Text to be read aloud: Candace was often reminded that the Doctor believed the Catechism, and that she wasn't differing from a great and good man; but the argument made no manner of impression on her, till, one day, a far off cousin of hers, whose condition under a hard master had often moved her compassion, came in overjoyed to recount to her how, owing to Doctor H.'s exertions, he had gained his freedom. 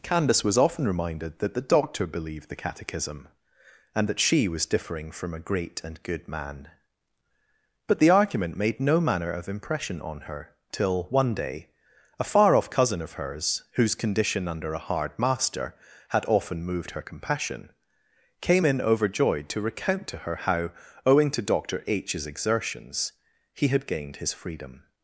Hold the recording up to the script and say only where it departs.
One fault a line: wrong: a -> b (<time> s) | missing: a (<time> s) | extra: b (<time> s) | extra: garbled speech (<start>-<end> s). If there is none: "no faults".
wrong: wasn't -> was (4.5 s)